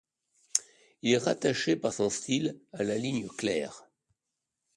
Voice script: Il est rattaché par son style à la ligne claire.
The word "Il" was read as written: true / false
true